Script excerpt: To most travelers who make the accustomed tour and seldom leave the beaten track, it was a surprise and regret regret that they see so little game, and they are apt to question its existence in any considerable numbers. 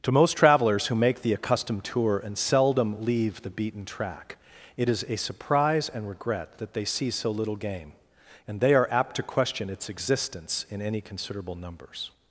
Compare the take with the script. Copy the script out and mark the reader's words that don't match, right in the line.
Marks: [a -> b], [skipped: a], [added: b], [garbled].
To most travelers who make the accustomed tour and seldom leave the beaten track, it [was -> is] a surprise and regret [skipped: regret] that they see so little game, and they are apt to question its existence in any considerable numbers.